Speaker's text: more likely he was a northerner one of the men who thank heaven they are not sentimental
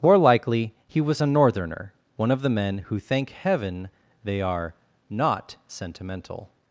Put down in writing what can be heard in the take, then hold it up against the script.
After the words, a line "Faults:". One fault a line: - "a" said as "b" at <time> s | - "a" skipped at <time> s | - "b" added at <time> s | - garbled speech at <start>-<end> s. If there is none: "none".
more likely he was a northerner one of the men who thank heaven they are not sentimental
Faults:
none